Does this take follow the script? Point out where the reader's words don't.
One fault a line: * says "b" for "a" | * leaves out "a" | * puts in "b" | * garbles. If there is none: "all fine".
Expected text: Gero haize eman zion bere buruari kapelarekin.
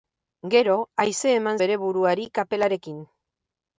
* leaves out "zion"